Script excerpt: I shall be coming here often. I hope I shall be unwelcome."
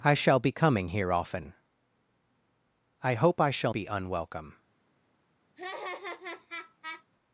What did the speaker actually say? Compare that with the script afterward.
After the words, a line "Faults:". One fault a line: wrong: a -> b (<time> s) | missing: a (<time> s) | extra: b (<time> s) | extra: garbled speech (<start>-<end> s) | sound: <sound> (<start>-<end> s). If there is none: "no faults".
I shall be coming here often. I hope I shall be unwelcome."
Faults:
sound: laugh (5.6-7.0 s)